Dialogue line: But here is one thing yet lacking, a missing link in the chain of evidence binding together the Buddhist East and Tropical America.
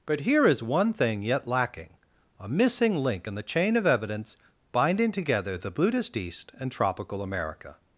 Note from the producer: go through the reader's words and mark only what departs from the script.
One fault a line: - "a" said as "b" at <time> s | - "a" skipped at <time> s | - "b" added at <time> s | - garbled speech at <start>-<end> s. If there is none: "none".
none